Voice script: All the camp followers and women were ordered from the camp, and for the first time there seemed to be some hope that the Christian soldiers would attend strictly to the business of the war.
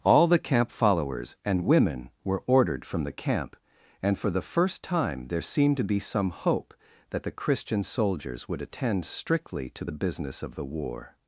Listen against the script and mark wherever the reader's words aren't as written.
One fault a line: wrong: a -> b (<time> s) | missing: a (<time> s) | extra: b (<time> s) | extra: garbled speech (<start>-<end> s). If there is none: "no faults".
no faults